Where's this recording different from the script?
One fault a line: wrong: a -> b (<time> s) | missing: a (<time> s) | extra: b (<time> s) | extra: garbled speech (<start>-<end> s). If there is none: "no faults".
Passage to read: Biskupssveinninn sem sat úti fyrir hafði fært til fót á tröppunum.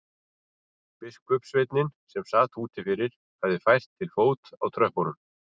no faults